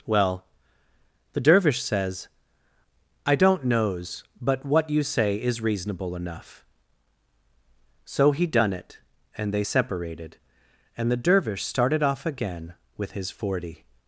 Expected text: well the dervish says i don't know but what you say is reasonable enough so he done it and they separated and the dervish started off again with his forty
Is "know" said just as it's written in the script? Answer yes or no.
no